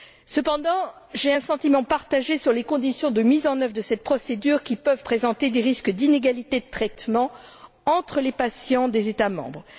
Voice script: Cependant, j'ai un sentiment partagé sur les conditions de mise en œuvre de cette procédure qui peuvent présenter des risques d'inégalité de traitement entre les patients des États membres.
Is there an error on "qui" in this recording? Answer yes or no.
no